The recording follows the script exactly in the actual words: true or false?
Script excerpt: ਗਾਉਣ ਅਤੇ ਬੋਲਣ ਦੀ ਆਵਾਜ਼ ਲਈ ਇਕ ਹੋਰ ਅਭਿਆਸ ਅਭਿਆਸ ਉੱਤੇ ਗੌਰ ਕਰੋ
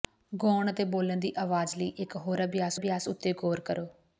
true